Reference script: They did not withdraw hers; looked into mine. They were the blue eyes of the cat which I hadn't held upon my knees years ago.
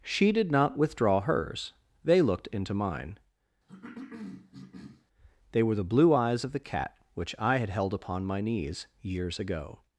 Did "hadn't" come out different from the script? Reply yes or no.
yes